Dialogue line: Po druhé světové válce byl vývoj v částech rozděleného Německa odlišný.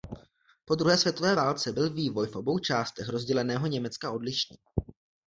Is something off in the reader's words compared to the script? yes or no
yes